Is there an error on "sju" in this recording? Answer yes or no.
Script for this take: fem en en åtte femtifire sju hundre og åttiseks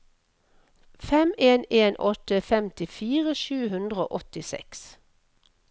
no